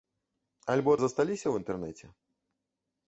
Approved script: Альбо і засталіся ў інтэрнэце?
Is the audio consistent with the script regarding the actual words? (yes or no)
yes